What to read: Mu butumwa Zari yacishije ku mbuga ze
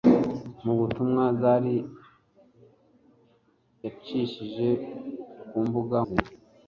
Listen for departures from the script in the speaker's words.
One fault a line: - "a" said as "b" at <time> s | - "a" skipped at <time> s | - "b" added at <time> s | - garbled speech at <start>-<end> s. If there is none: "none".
none